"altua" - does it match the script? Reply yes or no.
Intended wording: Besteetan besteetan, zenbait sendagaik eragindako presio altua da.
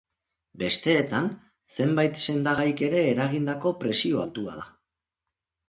yes